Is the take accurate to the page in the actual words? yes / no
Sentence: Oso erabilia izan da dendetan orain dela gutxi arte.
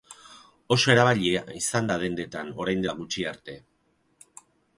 yes